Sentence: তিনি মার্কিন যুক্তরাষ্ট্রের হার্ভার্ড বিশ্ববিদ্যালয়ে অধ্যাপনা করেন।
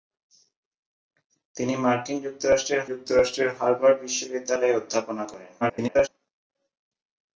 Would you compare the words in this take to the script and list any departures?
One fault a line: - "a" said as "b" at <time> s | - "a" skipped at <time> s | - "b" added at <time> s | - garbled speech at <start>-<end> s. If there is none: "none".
- "যুক্তরাষ্ট্রের" added at 2.9 s
- garbled speech at 5.6-6.1 s